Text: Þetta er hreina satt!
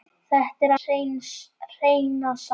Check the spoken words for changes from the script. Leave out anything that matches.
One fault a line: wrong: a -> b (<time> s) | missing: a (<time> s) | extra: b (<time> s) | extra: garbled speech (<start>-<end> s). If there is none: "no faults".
no faults